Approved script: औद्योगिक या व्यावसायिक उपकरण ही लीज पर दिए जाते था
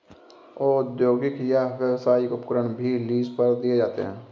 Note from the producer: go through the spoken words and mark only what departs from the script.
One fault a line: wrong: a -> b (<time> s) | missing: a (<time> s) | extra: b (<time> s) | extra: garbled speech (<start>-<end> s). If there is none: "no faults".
wrong: ही -> भी (2.8 s)
wrong: था -> है (4.0 s)